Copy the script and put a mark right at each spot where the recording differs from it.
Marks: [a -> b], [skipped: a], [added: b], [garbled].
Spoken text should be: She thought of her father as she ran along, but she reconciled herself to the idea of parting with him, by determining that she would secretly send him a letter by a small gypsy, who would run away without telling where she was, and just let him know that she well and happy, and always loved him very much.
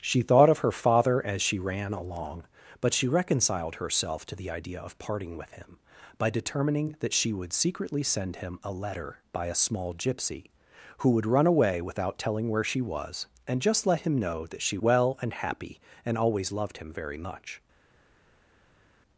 She thought of her father as she ran along, but she reconciled herself to the idea of parting with him, by determining that she would secretly send him a letter by a small gypsy, who would run away without telling where she was, and just let him know that she well and happy, and always loved him very much.